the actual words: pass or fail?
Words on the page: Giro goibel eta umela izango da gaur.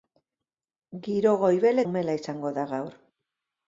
fail